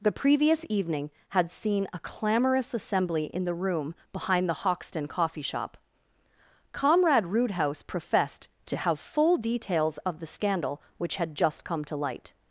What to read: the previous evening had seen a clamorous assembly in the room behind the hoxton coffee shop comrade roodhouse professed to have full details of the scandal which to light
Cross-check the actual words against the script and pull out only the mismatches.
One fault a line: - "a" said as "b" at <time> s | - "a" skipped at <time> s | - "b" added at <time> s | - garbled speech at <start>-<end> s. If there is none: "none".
- "had just come" added at 11.2 s